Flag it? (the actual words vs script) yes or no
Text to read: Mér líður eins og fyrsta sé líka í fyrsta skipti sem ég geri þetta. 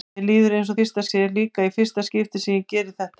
no